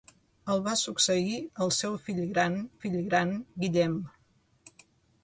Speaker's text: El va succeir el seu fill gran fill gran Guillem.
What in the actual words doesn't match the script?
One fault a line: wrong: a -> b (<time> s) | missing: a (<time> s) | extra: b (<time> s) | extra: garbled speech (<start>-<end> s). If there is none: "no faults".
no faults